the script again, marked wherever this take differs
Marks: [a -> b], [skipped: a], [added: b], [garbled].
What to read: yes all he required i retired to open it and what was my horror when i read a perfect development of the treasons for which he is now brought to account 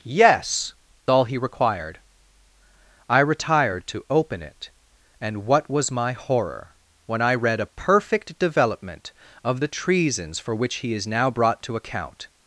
yes all he required i retired to open it and what was my horror when i read a perfect development of the treasons for which he is now brought to account